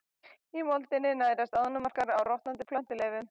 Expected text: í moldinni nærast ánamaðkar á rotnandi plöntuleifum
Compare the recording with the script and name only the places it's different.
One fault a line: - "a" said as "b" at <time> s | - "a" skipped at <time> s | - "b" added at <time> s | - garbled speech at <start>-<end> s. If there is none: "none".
none